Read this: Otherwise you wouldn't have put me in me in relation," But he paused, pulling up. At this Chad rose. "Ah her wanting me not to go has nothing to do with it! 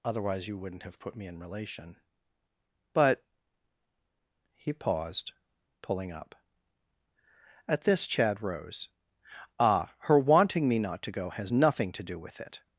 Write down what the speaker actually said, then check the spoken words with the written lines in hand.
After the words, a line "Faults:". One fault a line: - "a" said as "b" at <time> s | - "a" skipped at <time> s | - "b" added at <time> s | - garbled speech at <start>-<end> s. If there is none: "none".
Otherwise you wouldn't have put me in relation," But he paused, pulling up. At this Chad rose. "Ah her wanting me not to go has nothing to do with it!
Faults:
- "me in" skipped at 1.4 s